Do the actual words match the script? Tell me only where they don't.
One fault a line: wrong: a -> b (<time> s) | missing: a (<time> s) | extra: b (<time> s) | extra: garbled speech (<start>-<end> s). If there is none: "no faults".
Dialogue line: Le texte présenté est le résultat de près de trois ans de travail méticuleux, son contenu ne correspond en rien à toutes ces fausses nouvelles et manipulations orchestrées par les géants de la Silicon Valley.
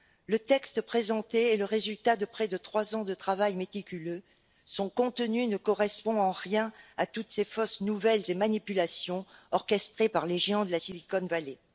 no faults